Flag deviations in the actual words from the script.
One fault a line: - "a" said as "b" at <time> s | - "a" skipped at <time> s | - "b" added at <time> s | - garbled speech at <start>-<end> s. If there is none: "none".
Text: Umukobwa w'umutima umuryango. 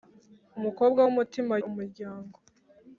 none